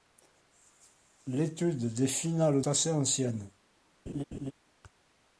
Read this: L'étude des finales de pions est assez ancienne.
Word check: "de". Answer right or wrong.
wrong